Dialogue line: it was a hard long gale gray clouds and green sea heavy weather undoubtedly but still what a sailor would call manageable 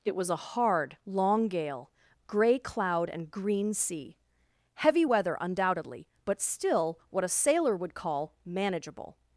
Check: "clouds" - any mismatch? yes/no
yes